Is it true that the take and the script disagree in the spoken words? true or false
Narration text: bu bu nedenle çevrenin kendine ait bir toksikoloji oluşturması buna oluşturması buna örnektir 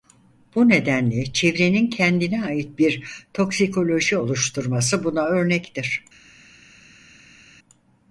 true